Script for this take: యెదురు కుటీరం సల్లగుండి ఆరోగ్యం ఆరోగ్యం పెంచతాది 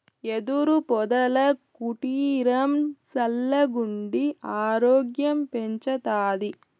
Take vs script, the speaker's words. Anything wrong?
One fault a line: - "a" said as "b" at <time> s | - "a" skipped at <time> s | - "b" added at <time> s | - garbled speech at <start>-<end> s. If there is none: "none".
- "పొదల" added at 0.9 s
- "ఆరోగ్యం" skipped at 5.4 s